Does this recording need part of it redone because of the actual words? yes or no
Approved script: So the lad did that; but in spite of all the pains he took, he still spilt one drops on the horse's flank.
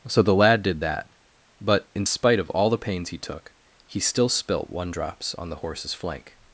no